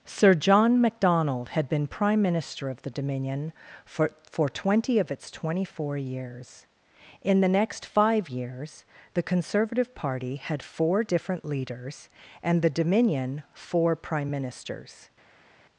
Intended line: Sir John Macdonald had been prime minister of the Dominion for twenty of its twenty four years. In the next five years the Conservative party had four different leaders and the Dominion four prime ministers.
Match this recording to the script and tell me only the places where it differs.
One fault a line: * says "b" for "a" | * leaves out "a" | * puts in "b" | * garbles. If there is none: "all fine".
* puts in "for"